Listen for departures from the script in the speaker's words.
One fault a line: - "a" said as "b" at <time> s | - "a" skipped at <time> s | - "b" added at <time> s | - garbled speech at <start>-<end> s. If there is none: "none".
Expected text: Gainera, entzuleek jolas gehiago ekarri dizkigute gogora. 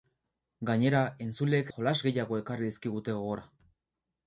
none